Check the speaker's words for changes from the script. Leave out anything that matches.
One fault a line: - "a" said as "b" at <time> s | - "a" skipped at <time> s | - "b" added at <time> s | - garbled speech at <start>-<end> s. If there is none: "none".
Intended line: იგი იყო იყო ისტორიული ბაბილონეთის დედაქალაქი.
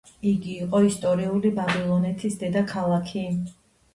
- "იყო" skipped at 0.8 s